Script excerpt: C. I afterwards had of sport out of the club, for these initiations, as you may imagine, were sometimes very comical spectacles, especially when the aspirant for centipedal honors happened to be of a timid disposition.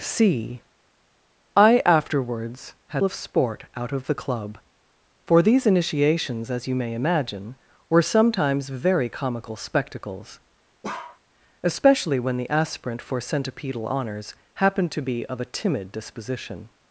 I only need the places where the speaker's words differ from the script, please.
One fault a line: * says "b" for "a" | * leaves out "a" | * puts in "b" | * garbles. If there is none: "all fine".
all fine